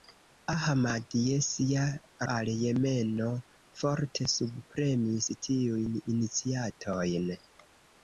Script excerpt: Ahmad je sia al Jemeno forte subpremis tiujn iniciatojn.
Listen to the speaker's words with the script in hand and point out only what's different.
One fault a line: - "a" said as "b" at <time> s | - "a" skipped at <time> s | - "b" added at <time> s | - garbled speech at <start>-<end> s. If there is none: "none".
none